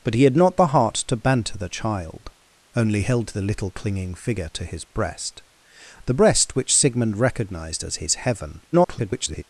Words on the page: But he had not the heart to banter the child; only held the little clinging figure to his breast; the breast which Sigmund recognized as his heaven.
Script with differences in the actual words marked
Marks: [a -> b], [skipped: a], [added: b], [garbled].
But he had not the heart to banter the child; only held the little clinging figure to his breast; the breast which Sigmund recognized as his heaven. [garbled]